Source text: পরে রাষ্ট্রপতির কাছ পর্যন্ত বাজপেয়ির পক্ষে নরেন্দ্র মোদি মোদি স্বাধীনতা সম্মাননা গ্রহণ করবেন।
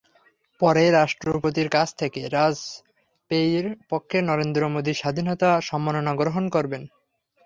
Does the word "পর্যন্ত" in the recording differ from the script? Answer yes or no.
yes